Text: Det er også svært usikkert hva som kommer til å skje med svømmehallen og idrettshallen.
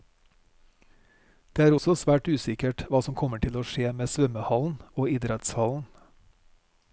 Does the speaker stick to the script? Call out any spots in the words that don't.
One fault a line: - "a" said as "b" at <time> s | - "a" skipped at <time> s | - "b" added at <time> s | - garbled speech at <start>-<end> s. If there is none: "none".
none